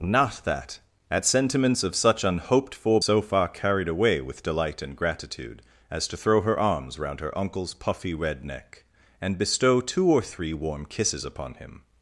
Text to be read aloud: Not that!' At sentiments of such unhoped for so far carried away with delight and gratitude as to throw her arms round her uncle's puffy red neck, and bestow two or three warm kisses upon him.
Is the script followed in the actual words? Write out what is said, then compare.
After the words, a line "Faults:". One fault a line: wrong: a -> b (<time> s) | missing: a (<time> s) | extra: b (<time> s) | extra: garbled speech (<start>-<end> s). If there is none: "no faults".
Not that!' At sentiments of such unhoped for so far carried away with delight and gratitude as to throw her arms round her uncle's puffy red neck, and bestow two or three warm kisses upon him.
Faults:
no faults